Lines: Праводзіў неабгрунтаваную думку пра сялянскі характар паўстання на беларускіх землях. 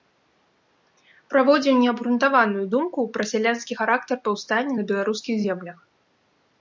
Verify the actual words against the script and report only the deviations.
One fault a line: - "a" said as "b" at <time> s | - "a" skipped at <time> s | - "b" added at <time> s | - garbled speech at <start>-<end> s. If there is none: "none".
none